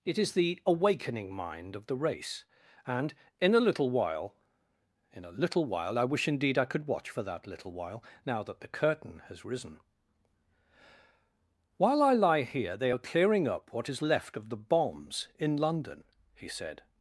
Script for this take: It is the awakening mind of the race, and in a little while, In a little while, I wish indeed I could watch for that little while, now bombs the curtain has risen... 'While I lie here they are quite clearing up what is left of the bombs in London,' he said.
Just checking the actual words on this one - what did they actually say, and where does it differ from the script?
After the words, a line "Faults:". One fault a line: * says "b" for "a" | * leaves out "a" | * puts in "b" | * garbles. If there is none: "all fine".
It is the awakening mind of the race, and in a little while, In a little while, I wish indeed I could watch for that little while, now that the curtain has risen... 'While I lie here they are clearing up what is left of the bombs in London,' he said.
Faults:
* says "that" for "bombs"
* leaves out "quite"